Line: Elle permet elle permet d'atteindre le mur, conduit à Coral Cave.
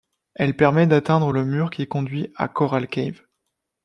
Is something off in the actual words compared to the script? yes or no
yes